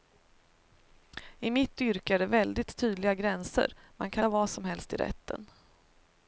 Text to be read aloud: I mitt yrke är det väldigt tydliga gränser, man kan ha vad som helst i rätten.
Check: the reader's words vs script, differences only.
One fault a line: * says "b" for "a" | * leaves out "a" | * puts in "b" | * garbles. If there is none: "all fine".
all fine